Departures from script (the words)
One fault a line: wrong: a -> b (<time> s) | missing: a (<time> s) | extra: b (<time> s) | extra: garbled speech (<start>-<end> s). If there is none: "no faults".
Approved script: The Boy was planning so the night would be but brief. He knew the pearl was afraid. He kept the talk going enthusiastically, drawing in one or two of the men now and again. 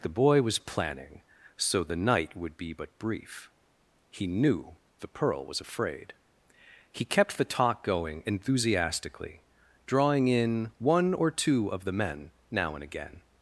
no faults